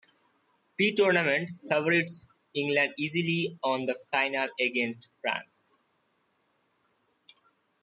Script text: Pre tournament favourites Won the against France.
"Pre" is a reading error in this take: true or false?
false